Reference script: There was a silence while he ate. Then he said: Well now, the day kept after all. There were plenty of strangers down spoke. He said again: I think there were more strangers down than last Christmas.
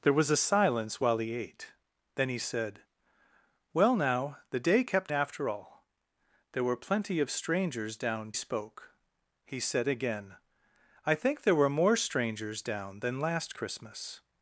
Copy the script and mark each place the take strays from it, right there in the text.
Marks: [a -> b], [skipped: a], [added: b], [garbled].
There was a silence while he ate. Then he said: Well now, the day kept after all. There were plenty of strangers down spoke. He said again: I think there were more strangers down than last Christmas.